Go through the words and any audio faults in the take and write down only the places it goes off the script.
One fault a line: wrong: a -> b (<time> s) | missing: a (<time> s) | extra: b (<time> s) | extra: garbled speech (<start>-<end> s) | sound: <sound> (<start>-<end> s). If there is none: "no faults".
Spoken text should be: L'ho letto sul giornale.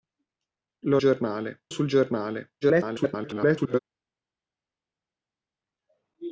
wrong: letto -> giornale (1.0 s)
extra: garbled speech (2.6-3.8 s)